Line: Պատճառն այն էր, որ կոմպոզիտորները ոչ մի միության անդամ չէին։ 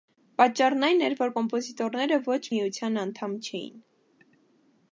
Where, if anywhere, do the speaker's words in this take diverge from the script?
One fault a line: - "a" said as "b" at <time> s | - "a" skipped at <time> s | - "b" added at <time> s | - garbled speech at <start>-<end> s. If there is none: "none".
- "մի" skipped at 2.4 s